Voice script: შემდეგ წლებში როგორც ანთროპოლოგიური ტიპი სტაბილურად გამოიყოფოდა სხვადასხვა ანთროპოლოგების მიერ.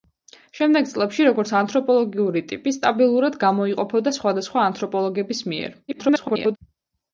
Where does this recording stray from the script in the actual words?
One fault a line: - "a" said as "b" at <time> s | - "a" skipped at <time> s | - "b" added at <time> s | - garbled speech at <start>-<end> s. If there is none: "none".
- garbled speech at 5.9-6.6 s